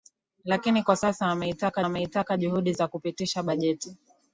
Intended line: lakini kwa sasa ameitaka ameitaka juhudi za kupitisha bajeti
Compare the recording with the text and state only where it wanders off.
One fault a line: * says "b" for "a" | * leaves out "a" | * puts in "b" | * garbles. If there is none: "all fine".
all fine